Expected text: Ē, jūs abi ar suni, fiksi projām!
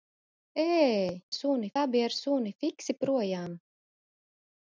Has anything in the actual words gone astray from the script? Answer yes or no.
yes